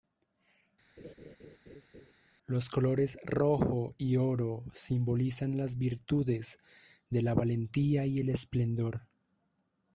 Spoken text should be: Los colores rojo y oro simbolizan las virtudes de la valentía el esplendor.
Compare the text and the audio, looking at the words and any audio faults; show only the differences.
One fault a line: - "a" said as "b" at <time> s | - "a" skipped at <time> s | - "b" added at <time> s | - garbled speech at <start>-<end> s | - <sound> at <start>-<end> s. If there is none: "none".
- laugh at 1.0-2.1 s
- "y" added at 8.1 s